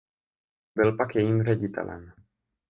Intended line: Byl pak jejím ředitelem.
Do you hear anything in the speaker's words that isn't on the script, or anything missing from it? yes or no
no